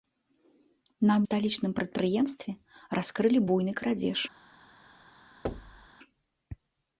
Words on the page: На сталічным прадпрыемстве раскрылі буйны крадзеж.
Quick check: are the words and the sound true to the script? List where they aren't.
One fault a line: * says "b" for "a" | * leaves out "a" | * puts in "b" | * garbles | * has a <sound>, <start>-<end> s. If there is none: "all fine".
* has a thud, 5.4-5.9 s